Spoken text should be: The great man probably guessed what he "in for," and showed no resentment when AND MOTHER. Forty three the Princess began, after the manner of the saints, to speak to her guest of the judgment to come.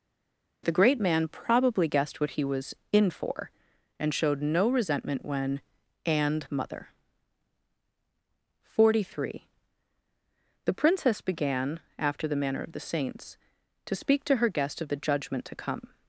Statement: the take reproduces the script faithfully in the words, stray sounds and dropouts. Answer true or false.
false